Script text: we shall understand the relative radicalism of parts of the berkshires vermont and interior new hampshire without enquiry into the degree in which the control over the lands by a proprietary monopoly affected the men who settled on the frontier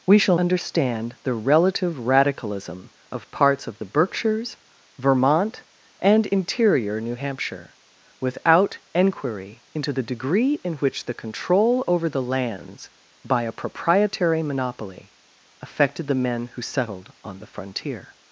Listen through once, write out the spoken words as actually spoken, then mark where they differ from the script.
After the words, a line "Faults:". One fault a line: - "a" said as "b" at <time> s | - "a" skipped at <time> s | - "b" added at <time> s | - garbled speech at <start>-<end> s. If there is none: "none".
we shall understand the relative radicalism of parts of the berkshires vermont and interior new hampshire without enquiry into the degree in which the control over the lands by a proprietary monopoly affected the men who settled on the frontier
Faults:
none